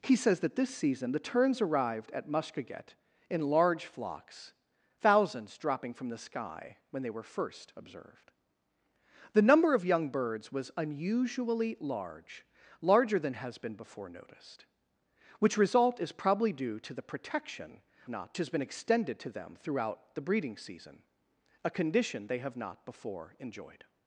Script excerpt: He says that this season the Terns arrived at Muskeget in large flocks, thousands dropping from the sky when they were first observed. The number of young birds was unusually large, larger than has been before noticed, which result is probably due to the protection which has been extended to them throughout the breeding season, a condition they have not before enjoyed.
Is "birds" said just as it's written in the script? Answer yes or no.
yes